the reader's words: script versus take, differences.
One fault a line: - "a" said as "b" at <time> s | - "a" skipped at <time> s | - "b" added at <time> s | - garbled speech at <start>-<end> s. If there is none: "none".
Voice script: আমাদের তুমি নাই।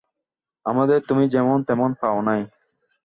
- "যেমন তেমন পাও" added at 1.3 s